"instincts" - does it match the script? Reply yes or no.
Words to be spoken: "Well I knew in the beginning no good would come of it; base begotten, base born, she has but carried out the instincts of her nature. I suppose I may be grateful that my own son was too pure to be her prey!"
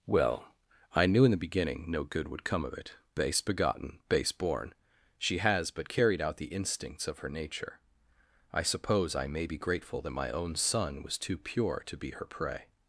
yes